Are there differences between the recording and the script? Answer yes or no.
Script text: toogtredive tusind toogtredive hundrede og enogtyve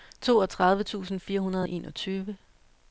yes